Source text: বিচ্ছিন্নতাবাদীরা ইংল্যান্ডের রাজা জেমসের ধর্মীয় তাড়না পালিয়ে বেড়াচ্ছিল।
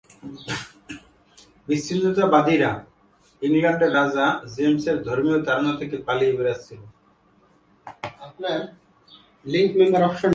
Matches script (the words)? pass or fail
fail